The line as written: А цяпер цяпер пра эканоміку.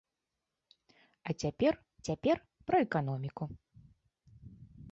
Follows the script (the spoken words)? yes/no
yes